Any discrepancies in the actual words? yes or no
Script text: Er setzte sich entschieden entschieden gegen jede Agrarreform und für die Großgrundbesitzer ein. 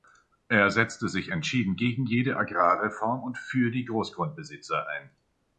yes